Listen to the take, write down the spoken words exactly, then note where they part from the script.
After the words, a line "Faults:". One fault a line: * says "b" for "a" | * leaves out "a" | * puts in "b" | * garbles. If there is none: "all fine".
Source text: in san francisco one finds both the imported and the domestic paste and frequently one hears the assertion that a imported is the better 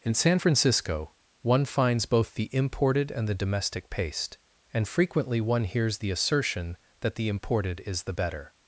in san francisco one finds both the imported and the domestic paste and frequently one hears the assertion that the imported is the better
Faults:
* says "the" for "a"